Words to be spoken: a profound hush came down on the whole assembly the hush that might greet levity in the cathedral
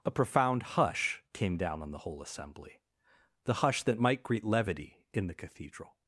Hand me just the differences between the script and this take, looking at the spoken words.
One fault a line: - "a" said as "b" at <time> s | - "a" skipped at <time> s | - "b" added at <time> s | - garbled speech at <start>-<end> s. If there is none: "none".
none